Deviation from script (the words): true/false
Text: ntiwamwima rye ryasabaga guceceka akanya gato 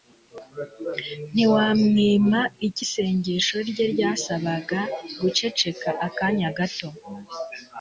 true